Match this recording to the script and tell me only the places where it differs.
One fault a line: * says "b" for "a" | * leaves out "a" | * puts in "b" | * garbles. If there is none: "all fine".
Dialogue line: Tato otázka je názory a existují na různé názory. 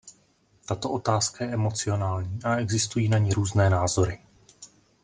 * says "emocionální" for "názory"
* puts in "ni"